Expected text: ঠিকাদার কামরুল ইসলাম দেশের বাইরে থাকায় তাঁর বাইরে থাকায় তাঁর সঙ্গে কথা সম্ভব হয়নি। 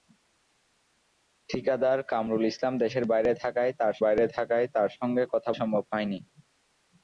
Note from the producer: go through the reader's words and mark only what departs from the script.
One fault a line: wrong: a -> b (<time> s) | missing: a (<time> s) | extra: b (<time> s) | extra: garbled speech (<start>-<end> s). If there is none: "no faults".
no faults